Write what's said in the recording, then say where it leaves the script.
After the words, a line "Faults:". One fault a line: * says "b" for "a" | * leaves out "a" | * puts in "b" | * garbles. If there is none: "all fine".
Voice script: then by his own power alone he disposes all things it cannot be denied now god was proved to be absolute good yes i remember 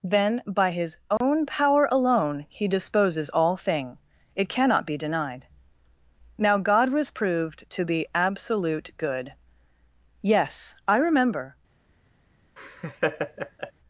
then by his own power alone he disposes all thing it cannot be denied now god was proved to be absolute good yes i remember
Faults:
* says "thing" for "things"